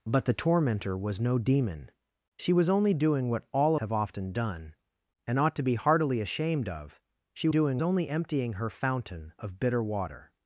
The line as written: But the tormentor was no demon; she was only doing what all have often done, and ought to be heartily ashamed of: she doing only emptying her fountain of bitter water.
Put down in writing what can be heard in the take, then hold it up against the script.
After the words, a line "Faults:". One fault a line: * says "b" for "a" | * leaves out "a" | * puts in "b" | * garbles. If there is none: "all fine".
But the tormentor was no demon; she was only doing what all have often done, and ought to be heartily ashamed of: she doing only emptying her fountain of bitter water.
Faults:
all fine